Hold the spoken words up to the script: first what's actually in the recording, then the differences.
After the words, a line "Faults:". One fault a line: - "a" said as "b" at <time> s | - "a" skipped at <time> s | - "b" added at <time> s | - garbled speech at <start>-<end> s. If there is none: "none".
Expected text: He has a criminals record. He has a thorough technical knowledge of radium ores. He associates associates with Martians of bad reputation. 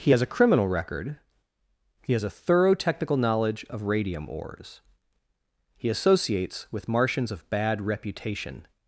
He has a criminal record. He has a thorough technical knowledge of radium ores. He associates with Martians of bad reputation.
Faults:
- "criminals" said as "criminal" at 0.3 s
- "associates" skipped at 6.7 s